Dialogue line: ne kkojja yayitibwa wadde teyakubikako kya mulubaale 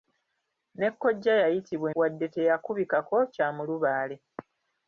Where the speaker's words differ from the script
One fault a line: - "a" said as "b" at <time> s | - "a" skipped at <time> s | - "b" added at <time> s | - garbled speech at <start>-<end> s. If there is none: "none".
none